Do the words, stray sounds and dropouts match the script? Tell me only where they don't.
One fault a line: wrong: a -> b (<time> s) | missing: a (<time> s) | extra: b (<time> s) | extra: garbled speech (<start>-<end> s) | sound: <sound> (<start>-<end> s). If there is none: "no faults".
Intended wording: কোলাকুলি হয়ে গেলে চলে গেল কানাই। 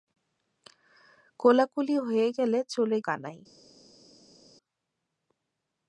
missing: গেল (3.0 s)